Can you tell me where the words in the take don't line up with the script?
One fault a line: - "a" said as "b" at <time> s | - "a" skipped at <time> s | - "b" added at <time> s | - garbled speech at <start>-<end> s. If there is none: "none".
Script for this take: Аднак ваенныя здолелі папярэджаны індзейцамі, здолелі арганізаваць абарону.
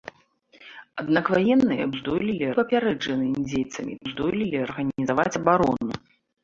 none